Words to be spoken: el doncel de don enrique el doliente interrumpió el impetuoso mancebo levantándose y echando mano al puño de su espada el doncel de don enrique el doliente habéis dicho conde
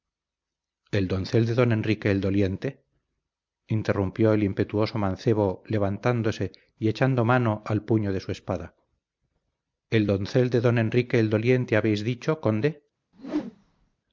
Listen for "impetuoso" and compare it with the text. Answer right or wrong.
right